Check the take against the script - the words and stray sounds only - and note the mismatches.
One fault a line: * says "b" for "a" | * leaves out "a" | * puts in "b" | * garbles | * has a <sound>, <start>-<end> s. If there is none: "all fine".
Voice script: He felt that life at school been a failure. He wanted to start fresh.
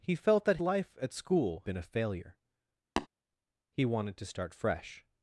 * has a tap, 3.0-3.1 s